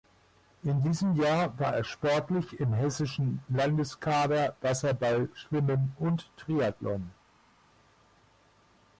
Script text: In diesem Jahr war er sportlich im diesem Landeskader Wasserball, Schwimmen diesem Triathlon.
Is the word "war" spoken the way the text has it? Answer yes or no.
yes